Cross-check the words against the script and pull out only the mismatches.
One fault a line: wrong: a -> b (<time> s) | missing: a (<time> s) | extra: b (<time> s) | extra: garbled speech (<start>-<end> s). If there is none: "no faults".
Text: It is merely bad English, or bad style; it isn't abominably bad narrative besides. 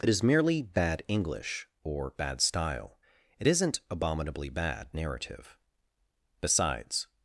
no faults